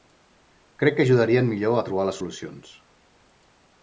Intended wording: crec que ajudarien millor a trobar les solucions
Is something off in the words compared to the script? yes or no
no